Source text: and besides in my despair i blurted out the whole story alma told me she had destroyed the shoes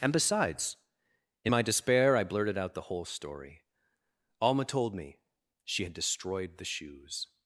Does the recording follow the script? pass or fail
pass